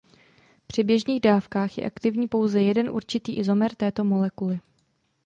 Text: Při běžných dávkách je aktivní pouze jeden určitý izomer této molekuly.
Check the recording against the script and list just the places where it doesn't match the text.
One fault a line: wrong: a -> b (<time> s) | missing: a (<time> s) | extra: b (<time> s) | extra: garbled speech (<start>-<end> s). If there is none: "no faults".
no faults